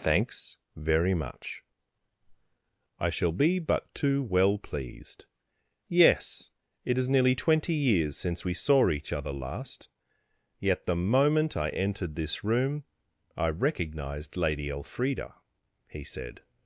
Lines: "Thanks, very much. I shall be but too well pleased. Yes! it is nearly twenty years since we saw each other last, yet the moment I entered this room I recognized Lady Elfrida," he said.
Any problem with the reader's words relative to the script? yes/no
no